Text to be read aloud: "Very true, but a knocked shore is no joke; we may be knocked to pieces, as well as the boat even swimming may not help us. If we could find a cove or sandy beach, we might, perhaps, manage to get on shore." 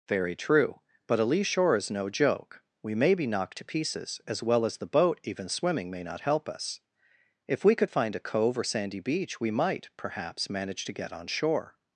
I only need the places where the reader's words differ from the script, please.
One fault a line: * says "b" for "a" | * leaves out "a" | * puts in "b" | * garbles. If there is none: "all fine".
* says "lee" for "knocked"